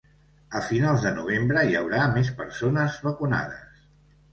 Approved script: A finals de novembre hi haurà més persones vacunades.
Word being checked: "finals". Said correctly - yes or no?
yes